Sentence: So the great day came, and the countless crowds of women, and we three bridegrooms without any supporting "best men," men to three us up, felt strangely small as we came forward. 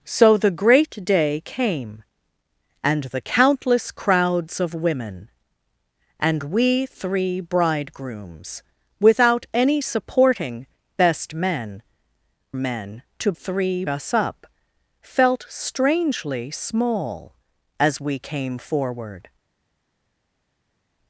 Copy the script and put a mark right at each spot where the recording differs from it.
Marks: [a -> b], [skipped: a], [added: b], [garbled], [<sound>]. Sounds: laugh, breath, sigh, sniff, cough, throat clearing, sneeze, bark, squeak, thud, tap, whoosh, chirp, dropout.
So the great day came, and the countless crowds of women, and we three bridegrooms without any supporting "best men," men to three us up, felt strangely small as we came forward.